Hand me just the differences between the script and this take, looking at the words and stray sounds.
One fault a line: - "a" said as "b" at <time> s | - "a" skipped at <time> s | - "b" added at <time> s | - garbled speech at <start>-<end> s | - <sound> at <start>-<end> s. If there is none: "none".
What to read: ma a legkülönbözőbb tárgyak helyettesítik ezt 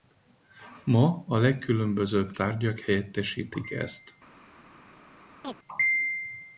- chirp at 5.4-5.6 s